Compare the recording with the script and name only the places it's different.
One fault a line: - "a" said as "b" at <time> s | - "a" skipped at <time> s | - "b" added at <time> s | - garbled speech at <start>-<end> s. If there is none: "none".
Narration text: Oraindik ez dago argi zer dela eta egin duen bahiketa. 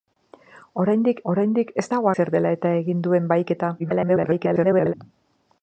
- "oraindik" added at 1.3 s
- "argi" skipped at 2.1 s
- garbled speech at 3.8-4.9 s